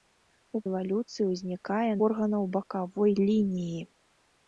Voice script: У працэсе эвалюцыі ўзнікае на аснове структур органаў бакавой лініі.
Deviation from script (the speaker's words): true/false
true